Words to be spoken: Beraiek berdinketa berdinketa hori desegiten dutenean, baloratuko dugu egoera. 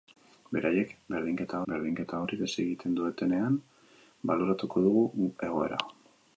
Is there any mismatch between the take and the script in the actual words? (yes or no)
no